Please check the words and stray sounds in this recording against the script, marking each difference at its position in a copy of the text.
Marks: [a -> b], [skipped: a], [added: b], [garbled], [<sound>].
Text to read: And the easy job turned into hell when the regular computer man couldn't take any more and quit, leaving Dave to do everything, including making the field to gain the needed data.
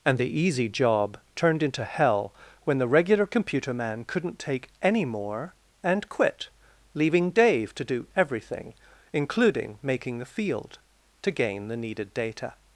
And the easy job turned into hell when the regular computer man couldn't take any more and quit, leaving Dave to do everything, including making the field to gain the needed data.